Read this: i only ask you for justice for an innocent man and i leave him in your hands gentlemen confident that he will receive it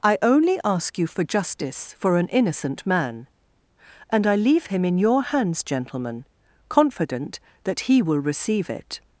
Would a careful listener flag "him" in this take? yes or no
no